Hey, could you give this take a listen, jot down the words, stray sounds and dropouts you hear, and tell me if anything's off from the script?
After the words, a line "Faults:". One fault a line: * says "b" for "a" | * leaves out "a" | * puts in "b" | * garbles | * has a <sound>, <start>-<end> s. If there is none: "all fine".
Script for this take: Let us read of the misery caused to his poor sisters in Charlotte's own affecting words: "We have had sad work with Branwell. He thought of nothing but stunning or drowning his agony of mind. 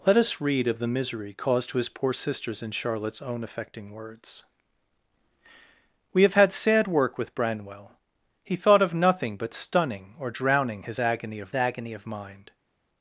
Let us read of the misery caused to his poor sisters in Charlotte's own affecting words: "We have had sad work with Branwell. He thought of nothing but stunning or drowning his agony of agony of mind.
Faults:
* puts in "agony of"